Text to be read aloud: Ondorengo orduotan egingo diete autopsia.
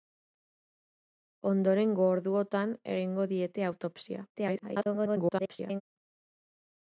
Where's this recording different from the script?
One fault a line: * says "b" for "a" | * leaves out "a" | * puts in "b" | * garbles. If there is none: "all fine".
* garbles